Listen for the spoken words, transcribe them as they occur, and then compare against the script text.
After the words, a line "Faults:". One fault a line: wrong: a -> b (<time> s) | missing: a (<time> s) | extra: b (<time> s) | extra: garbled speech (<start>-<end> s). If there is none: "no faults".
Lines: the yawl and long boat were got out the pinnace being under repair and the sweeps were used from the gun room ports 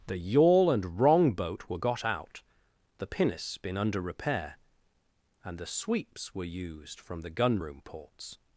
the yawl and wrong boat were got out the pinnace been under repair and the sweeps were used from the gun room ports
Faults:
wrong: long -> wrong (1.0 s)
wrong: being -> been (3.6 s)